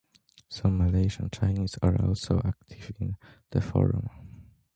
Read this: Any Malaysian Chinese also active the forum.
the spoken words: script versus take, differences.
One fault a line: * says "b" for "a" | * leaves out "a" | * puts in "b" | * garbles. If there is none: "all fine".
* says "Some" for "Any"
* puts in "are"
* puts in "in"